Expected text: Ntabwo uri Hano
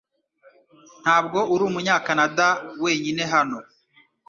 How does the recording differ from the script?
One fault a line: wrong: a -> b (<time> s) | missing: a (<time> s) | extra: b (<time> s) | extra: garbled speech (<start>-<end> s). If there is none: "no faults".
extra: Umunyakanada wenyine (1.7 s)